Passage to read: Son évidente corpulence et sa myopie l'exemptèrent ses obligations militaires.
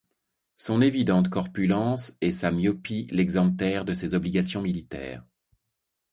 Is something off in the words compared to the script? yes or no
yes